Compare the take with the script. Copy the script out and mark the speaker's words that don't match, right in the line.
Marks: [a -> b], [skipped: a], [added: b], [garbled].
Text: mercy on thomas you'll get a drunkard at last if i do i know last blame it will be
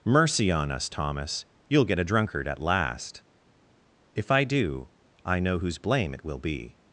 mercy on [added: us] thomas you'll get a drunkard at last if i do i know [last -> whose] blame it will be